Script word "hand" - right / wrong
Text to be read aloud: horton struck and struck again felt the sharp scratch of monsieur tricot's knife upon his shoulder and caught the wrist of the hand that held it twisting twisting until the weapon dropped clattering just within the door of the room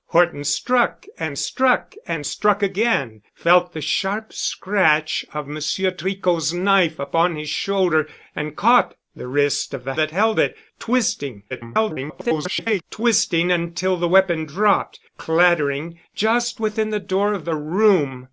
wrong